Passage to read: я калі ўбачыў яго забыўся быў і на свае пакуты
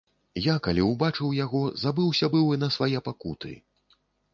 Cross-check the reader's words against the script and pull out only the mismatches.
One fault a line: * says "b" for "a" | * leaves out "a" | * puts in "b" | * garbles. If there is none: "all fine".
all fine